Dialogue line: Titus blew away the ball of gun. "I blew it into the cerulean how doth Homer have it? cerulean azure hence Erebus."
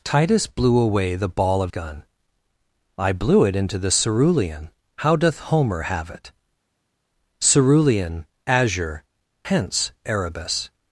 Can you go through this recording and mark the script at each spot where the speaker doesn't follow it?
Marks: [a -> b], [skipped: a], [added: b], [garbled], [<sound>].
Titus blew away the ball of gun. "I blew it into the cerulean how doth Homer have it? cerulean azure hence Erebus."